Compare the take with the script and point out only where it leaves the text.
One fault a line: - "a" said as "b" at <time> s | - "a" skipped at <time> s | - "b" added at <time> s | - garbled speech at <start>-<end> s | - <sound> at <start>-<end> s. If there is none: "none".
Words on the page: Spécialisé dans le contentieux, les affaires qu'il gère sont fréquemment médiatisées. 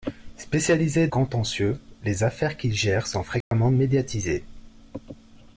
- "dans le" skipped at 1.1 s
- dropout at 3.4-3.5 s